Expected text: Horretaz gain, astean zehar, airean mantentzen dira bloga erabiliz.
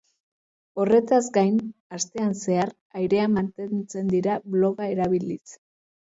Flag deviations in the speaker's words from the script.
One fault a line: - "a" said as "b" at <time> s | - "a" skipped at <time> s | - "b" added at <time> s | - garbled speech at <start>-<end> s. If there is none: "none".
none